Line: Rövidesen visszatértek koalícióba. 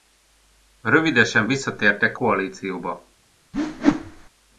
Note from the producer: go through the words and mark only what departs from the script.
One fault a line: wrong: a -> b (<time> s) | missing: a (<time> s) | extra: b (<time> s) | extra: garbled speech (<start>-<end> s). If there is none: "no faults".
no faults